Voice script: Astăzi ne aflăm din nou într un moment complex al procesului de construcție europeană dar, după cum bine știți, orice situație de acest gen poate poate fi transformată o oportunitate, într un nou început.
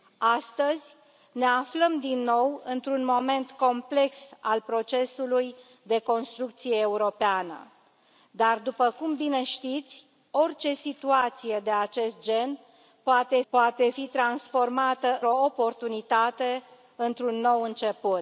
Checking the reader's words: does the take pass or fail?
pass